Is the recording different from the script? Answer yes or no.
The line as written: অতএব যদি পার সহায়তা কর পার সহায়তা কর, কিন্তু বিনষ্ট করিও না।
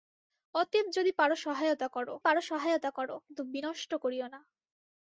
no